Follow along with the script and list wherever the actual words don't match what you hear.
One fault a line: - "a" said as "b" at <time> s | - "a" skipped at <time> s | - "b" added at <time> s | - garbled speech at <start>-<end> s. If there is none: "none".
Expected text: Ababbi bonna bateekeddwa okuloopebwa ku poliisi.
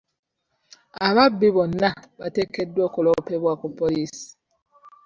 none